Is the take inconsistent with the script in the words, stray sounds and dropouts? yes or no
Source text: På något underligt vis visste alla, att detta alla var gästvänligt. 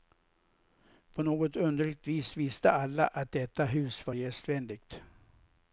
yes